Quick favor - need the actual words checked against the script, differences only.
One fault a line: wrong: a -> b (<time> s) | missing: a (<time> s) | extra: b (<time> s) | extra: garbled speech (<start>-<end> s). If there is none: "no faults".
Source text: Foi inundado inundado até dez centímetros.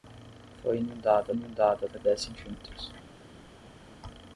no faults